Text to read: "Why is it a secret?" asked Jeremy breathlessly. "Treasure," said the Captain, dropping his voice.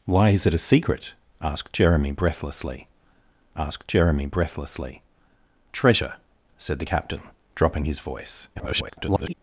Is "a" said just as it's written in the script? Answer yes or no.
yes